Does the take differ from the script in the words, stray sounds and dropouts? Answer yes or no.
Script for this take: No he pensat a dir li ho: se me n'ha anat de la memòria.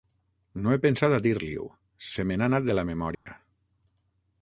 yes